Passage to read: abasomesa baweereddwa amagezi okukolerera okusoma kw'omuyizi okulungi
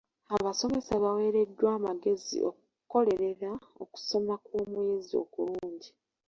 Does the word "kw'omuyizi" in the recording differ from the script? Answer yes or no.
no